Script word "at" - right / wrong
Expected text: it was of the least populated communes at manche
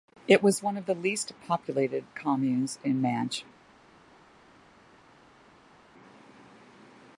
wrong